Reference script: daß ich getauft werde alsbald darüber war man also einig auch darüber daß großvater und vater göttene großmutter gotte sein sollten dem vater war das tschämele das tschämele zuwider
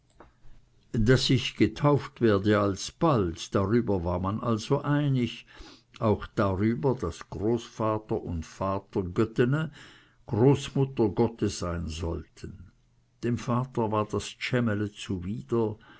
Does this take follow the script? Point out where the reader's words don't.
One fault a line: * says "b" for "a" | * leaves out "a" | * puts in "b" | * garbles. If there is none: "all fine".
* leaves out "das tschämele"